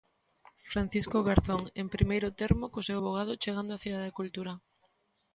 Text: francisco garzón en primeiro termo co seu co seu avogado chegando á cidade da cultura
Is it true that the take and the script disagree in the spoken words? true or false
true